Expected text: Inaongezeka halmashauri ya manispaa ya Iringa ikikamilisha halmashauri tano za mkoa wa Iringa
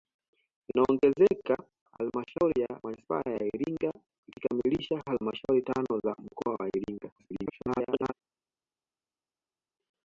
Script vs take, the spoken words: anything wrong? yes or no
yes